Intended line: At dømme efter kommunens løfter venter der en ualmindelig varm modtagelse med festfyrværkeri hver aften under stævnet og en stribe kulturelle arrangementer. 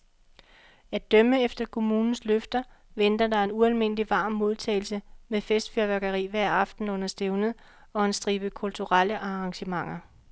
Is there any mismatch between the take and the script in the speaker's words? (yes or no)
no